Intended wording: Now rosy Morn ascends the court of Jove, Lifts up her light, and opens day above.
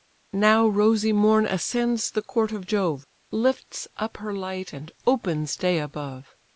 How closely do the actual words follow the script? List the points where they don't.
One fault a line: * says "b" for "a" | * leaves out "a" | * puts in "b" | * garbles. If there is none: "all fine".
all fine